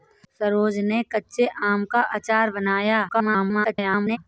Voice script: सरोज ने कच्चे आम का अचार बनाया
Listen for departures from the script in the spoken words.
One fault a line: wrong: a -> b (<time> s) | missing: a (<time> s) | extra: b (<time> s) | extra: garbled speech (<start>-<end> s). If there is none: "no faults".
extra: garbled speech (3.1-4.2 s)